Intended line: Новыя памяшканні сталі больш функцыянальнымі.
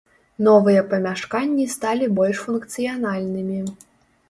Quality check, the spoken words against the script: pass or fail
pass